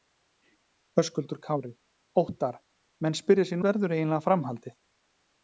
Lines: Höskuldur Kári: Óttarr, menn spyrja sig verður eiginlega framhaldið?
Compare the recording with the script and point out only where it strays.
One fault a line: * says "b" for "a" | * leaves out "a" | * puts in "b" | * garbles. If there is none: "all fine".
all fine